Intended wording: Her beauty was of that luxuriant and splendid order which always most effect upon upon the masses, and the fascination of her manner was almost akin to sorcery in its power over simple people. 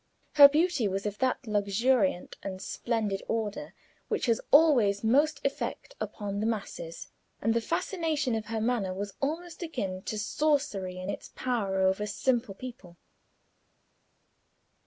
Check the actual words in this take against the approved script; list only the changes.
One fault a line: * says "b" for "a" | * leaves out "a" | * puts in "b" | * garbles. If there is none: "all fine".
* puts in "has"
* leaves out "upon"